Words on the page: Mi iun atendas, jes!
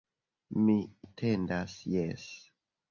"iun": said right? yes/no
no